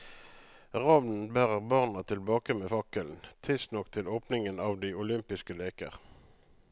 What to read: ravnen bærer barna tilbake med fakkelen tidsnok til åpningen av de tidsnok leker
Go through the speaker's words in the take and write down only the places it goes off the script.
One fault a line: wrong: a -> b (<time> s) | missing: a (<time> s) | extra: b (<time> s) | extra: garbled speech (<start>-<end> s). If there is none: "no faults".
wrong: tidsnok -> olympiske (5.0 s)